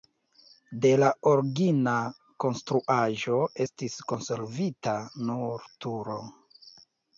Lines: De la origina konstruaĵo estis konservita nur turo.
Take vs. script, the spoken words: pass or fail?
pass